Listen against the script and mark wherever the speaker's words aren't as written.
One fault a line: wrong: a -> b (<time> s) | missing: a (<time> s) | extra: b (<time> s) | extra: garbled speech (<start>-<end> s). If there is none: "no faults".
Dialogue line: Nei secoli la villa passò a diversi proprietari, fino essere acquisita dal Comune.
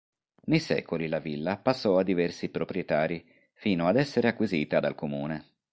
extra: ad (3.9 s)